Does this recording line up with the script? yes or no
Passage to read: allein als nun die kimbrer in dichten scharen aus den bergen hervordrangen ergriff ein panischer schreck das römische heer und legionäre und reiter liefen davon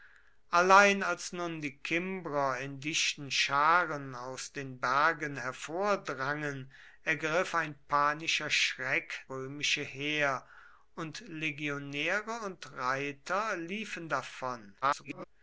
no